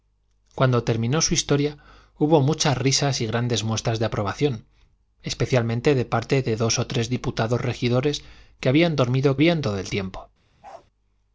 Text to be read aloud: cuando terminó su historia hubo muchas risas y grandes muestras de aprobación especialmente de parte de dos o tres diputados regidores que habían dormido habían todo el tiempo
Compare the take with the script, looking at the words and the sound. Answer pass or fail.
fail